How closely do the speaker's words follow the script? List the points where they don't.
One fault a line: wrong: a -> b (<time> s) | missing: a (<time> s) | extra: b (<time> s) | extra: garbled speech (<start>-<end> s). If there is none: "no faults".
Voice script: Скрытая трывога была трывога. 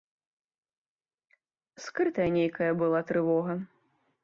wrong: трывога -> нейкая (2.4 s)